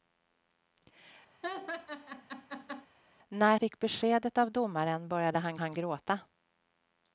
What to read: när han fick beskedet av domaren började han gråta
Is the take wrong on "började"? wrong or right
right